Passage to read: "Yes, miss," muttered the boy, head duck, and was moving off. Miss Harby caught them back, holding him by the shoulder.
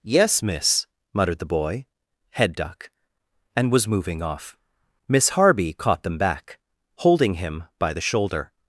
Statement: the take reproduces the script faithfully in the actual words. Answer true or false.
true